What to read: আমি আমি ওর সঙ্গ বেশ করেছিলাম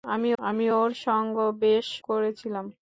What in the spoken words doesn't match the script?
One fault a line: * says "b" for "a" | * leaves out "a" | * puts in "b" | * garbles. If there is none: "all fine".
all fine